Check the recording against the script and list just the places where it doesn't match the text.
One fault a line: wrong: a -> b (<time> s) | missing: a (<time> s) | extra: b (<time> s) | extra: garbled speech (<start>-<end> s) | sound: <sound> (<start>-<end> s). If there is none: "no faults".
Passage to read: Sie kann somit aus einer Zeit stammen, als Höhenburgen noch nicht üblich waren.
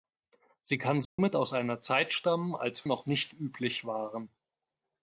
sound: dropout (1.0-1.2 s)
missing: Höhenburgen (2.9 s)